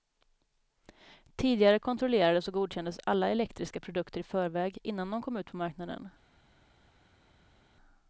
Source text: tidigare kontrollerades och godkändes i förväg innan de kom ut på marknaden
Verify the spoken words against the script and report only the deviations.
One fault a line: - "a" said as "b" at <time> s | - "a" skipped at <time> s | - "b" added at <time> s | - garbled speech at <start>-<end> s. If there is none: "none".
- "alla elektriska produkter" added at 3.0 s